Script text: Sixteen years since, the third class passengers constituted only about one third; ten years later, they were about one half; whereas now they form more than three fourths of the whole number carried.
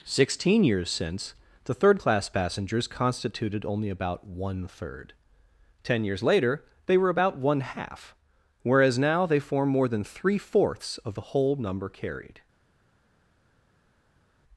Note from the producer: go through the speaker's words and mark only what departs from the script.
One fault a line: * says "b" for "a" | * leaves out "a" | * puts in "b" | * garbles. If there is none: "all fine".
all fine